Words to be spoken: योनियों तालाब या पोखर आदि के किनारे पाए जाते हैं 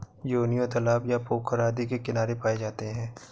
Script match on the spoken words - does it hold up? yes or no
yes